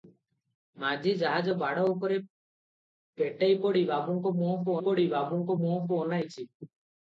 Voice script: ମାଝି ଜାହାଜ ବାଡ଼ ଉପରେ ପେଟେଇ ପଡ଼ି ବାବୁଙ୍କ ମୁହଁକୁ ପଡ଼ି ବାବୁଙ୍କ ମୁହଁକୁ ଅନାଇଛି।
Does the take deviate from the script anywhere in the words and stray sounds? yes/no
no